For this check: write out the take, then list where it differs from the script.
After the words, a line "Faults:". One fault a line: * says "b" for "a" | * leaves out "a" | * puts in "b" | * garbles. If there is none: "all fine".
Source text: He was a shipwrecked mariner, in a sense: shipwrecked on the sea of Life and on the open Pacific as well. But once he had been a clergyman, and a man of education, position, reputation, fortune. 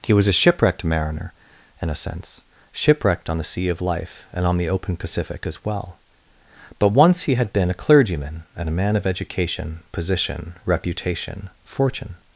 He was a shipwrecked mariner, in a sense: shipwrecked on the sea of Life and on the open Pacific as well. But once he had been a clergyman, and a man of education, position, reputation, fortune.
Faults:
all fine